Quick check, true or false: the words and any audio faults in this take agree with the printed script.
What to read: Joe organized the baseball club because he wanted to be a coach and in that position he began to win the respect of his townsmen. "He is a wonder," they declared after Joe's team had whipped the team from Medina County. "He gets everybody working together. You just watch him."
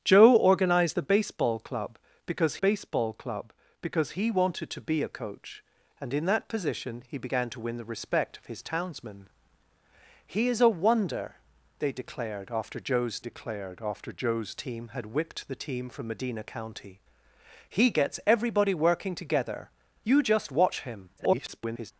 false